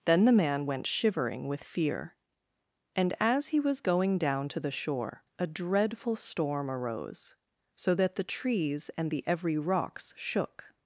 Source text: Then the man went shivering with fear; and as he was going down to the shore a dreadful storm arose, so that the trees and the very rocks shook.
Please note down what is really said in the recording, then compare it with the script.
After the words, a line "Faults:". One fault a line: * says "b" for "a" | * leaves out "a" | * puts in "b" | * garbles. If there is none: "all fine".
Then the man went shivering with fear; and as he was going down to the shore a dreadful storm arose, so that the trees and the every rocks shook.
Faults:
* says "every" for "very"